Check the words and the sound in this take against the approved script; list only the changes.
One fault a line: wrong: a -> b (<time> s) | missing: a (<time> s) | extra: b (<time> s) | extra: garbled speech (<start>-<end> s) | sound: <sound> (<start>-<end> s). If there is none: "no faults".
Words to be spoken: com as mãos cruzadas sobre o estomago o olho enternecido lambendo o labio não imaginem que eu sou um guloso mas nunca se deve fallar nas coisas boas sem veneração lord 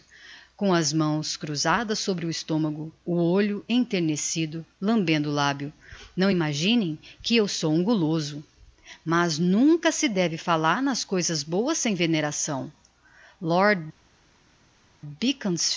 no faults